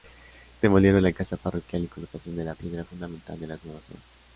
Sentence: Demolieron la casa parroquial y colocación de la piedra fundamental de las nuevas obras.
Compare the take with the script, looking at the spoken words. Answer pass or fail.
pass